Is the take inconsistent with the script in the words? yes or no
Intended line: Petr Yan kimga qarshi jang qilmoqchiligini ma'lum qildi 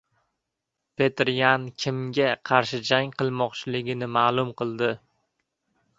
no